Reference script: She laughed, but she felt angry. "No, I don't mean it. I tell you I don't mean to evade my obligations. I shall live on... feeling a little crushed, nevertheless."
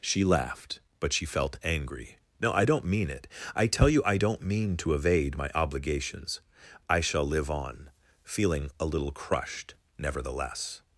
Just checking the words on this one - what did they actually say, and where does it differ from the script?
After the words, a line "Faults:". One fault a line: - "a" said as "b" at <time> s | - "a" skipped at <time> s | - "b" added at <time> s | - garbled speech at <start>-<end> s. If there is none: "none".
She laughed, but she felt angry. "No, I don't mean it. I tell you I don't mean to evade my obligations. I shall live on... feeling a little crushed, nevertheless."
Faults:
none